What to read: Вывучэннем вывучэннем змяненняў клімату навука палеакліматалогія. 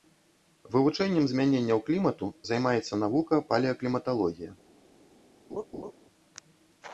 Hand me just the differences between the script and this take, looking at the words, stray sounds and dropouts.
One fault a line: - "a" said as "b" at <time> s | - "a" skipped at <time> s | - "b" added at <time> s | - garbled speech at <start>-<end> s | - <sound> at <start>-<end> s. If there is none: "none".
- "вывучэннем" skipped at 1.3 s
- "займаецца" added at 2.5 s
- laugh at 5.5-5.9 s